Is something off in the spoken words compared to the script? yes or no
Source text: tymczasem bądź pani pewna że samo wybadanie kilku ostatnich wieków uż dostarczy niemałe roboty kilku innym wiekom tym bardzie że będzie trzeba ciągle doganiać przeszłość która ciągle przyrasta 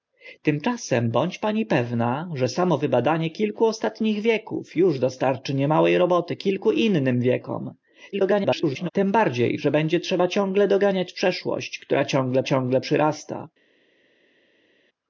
yes